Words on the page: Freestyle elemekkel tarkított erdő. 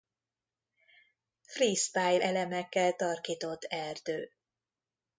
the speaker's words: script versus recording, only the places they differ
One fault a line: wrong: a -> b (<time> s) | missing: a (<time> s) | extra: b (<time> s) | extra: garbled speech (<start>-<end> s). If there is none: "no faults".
no faults